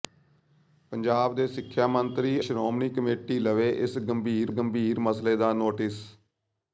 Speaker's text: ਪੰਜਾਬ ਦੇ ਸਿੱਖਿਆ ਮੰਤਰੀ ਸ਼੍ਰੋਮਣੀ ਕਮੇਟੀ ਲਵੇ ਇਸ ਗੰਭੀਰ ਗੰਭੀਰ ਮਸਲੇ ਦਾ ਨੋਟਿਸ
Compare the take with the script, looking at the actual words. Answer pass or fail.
pass